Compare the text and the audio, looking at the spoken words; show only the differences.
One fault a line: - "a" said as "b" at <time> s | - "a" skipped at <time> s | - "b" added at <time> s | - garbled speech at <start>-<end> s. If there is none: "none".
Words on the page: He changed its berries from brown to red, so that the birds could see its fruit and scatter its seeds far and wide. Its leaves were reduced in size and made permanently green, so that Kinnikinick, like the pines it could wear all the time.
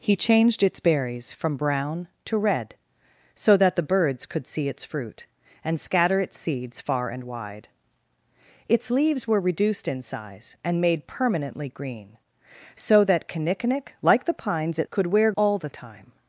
none